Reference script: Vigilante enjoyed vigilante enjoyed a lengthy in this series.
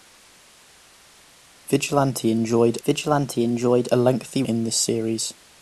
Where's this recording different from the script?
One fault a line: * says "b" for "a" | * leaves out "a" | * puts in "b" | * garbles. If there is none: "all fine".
all fine